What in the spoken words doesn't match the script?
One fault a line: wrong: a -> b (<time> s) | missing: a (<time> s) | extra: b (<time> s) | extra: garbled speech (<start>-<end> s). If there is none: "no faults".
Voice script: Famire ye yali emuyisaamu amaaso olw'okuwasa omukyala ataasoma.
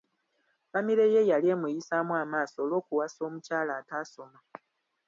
no faults